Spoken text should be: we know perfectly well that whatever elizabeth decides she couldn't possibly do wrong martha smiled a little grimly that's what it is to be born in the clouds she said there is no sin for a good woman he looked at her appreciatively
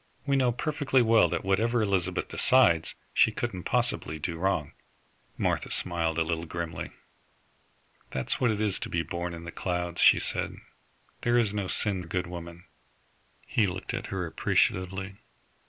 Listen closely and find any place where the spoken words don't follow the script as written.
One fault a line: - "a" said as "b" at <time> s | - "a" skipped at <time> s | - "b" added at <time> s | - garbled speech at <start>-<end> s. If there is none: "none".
- "for" skipped at 12.0 s